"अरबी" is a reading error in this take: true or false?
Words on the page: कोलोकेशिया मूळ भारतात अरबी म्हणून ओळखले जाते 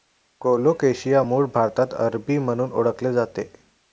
false